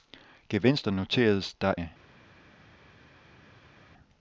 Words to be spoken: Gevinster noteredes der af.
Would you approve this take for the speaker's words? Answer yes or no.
yes